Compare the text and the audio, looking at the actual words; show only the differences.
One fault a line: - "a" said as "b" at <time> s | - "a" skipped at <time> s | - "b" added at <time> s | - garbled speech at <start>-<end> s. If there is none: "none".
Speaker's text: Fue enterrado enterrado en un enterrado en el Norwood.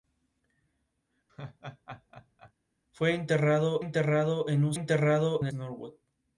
none